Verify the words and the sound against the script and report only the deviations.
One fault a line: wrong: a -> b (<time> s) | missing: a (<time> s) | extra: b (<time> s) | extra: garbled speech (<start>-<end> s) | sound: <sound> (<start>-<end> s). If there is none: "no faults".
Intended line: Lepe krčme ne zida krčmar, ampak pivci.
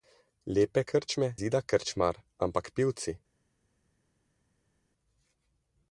missing: ne (1.3 s)